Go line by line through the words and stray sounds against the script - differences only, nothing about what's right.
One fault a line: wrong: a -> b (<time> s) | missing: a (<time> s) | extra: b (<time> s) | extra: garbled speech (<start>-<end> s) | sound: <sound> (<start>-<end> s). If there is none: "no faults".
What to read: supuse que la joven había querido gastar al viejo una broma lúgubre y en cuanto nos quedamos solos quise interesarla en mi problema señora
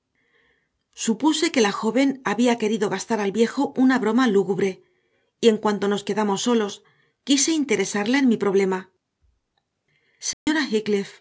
sound: dropout (10.3-10.5 s)